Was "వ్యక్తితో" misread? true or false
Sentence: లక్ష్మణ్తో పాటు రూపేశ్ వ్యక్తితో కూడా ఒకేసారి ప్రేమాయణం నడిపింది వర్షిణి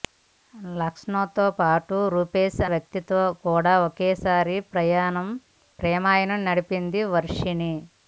false